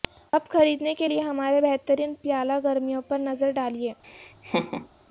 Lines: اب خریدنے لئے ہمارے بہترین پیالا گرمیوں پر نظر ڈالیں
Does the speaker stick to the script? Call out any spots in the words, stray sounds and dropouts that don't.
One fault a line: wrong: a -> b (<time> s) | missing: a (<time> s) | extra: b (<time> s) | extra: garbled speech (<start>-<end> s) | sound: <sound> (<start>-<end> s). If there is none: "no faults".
extra: کے (0.9 s)
sound: laugh (4.0-4.9 s)